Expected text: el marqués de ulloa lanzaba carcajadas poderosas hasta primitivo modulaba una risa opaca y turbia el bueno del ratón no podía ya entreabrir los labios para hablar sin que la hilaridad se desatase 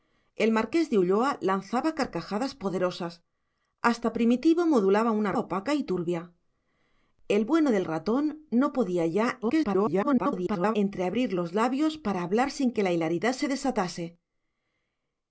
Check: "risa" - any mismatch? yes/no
yes